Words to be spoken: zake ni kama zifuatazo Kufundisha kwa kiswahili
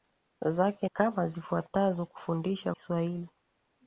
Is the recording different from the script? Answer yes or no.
yes